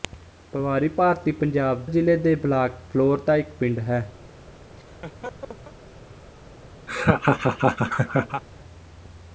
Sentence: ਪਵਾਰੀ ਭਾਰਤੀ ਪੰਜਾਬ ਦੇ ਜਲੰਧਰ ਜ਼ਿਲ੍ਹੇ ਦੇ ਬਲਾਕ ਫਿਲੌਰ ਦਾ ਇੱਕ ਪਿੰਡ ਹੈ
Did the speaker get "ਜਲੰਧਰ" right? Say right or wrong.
wrong